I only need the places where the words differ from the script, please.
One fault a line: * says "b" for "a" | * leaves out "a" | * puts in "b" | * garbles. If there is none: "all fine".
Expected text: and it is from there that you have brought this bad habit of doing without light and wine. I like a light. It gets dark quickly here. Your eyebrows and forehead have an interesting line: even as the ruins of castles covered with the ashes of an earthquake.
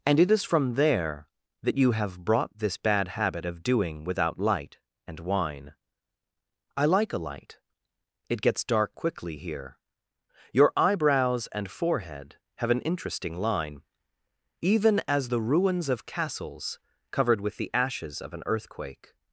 all fine